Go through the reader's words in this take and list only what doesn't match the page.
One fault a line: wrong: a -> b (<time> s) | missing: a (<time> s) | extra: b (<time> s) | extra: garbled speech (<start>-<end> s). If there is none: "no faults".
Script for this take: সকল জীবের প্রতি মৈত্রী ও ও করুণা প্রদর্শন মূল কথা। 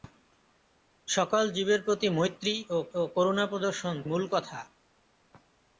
no faults